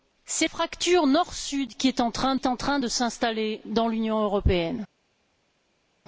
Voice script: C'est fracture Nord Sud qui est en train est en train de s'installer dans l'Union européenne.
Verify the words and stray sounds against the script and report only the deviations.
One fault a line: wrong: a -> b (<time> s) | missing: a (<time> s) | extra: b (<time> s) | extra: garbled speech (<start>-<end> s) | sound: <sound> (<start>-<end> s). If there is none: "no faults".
no faults